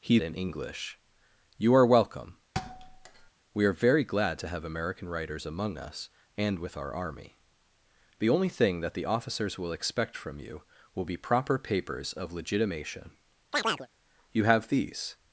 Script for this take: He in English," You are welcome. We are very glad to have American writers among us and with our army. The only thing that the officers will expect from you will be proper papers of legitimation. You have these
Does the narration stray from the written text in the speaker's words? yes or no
no